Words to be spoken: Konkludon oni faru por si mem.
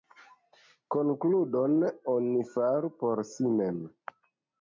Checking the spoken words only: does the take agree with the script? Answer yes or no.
yes